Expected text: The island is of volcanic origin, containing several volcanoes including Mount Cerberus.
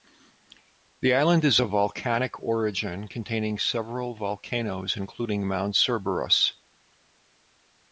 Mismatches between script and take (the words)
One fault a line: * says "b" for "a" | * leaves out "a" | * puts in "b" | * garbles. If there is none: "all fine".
all fine